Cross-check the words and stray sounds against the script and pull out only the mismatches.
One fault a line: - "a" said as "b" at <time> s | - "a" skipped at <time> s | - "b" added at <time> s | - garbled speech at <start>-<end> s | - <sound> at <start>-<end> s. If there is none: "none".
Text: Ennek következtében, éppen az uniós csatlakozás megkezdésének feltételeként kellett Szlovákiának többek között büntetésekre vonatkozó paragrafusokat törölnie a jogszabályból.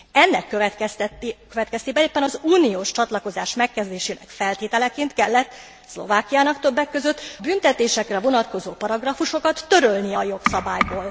none